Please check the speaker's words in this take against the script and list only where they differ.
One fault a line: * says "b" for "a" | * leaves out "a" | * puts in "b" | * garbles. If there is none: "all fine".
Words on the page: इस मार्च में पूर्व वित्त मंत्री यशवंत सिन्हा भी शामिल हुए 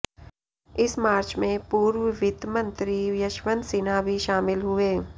all fine